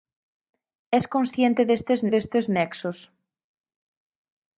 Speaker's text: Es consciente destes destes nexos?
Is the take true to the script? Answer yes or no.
yes